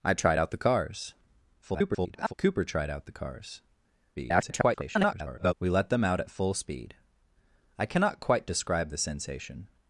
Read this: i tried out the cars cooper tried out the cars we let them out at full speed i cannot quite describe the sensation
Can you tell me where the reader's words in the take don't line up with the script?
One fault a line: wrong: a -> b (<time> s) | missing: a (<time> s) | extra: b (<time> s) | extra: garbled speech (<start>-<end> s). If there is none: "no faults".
extra: garbled speech (1.6-2.3 s)
extra: garbled speech (4.1-5.5 s)